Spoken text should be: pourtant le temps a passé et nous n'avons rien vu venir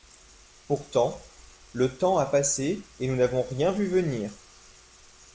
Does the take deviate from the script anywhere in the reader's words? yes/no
no